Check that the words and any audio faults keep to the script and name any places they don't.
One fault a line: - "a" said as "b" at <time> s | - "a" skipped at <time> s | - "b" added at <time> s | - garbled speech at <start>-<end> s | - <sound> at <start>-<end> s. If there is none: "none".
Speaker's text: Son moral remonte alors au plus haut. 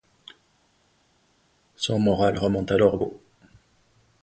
- "plus" skipped at 3.0 s